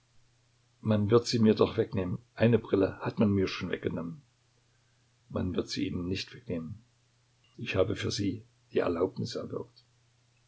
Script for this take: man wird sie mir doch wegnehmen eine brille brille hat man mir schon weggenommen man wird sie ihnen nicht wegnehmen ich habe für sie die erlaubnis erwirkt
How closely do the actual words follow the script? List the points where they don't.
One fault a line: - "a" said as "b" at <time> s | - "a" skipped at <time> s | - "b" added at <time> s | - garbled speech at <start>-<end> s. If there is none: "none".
- "brille" skipped at 3.0 s